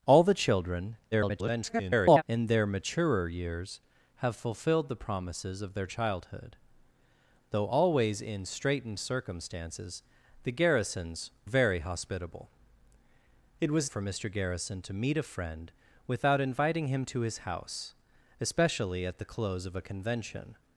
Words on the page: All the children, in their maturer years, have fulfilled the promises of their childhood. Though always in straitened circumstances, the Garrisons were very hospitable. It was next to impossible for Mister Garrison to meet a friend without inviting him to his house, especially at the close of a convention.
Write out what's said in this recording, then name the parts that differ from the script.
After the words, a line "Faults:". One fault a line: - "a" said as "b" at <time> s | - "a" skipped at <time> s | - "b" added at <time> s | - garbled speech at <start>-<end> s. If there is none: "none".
All the children, [garbled] in their maturer years, have fulfilled the promises of their childhood. Though always in straitened circumstances, the Garrisons very hospitable. It was for Mister Garrison to meet a friend without inviting him to his house, especially at the close of a convention.
Faults:
- garbled speech at 1.1-2.2 s
- "were" skipped at 11.3 s
- "next to impossible" skipped at 13.9 s